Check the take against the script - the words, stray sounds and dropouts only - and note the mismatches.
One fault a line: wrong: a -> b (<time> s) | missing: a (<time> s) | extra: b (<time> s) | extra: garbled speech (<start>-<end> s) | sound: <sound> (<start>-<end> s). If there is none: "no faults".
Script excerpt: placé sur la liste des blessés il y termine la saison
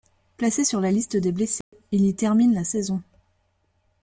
sound: dropout (1.6-1.7 s)